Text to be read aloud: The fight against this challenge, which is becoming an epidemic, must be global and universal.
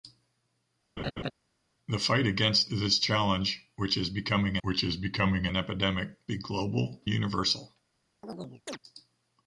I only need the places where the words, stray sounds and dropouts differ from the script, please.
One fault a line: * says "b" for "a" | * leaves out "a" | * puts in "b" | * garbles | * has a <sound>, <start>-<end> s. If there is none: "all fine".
* has a laugh, 1.0-1.3 s
* puts in "which is becoming"
* leaves out "must"
* leaves out "and"
* has a chirp, 8.2-8.8 s